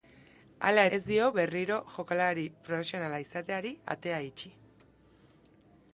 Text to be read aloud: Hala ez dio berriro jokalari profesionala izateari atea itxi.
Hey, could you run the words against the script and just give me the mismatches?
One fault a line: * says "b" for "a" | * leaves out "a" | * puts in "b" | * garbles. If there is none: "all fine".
all fine